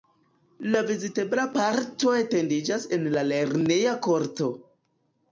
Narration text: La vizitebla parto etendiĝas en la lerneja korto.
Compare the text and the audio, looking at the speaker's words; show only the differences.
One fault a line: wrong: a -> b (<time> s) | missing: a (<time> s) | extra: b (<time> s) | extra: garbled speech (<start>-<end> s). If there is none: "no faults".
no faults